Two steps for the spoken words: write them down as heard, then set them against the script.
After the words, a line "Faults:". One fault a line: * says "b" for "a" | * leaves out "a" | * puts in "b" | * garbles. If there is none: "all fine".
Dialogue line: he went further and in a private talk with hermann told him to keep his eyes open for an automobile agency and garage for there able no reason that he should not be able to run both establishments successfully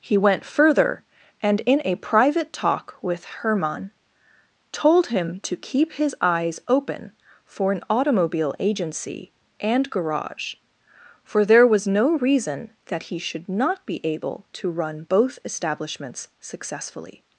he went further and in a private talk with hermann told him to keep his eyes open for an automobile agency and garage for there was no reason that he should not be able to run both establishments successfully
Faults:
* says "was" for "able"